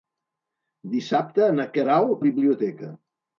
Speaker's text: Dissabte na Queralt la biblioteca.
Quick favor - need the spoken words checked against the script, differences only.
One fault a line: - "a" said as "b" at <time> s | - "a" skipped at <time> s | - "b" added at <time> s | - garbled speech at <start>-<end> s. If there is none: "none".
none